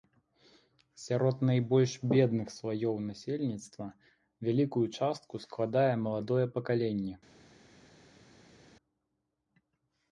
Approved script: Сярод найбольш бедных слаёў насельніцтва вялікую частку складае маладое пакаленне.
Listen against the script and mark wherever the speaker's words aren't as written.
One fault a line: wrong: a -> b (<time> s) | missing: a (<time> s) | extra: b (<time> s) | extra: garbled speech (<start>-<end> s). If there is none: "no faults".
no faults